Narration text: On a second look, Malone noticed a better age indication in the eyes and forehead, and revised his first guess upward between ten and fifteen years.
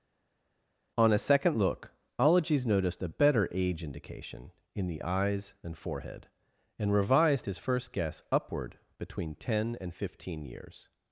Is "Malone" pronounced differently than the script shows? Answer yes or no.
yes